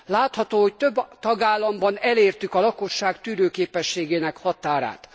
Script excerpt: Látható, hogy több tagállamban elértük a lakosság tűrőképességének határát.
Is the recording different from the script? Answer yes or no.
no